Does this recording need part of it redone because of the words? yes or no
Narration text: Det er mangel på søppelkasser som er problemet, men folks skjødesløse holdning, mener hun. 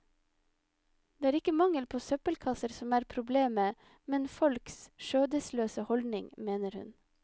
yes